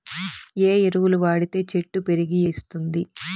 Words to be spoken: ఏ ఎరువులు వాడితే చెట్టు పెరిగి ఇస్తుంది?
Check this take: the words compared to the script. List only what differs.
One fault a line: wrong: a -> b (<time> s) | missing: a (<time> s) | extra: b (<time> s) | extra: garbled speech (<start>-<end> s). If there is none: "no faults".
no faults